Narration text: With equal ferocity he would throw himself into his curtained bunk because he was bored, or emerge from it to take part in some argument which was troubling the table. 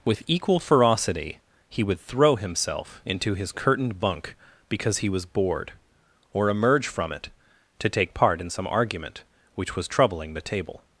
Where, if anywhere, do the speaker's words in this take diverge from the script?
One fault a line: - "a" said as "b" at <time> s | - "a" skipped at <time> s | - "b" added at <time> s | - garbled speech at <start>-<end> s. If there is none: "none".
none